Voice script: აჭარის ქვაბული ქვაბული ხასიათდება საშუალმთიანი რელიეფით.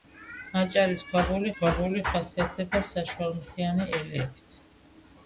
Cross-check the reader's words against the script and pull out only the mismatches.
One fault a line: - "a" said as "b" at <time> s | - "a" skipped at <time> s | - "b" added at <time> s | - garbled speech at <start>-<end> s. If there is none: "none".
none